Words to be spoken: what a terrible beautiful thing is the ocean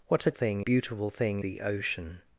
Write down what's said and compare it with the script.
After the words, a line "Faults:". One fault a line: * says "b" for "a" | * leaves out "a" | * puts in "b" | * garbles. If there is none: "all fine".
what a thing beautiful thing the ocean
Faults:
* says "thing" for "terrible"
* leaves out "is"